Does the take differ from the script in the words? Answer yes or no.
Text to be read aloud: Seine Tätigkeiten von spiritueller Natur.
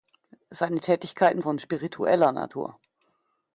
no